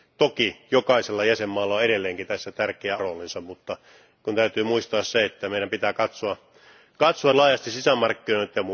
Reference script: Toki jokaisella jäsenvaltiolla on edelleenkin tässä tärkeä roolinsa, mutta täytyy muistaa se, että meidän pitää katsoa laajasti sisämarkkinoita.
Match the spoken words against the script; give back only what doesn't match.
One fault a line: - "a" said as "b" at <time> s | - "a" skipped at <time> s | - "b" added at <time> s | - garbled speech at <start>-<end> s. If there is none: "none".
none